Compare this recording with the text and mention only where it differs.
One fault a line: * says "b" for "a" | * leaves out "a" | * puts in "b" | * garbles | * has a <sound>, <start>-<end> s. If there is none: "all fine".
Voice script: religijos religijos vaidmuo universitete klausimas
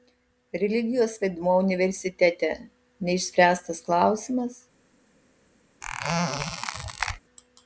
* leaves out "religijos"
* puts in "neišspręstas"
* has a squeak, 5.8-7.2 s